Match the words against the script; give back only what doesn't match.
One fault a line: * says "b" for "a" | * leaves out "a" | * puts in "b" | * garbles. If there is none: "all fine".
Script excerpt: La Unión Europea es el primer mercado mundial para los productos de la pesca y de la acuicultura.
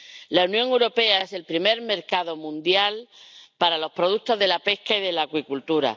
all fine